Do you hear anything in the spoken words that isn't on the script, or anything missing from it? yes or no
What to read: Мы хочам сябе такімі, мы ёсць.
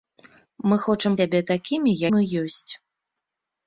no